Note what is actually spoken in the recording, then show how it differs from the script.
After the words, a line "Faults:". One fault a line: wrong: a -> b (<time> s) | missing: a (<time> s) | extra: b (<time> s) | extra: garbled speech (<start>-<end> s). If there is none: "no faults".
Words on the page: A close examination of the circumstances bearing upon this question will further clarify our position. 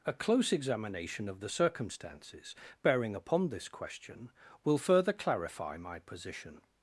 A close examination of the circumstances bearing upon this question will further clarify my position.
Faults:
wrong: our -> my (5.8 s)